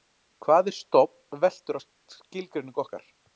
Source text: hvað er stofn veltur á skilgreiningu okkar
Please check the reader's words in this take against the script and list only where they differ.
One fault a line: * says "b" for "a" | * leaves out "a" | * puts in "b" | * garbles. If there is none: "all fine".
all fine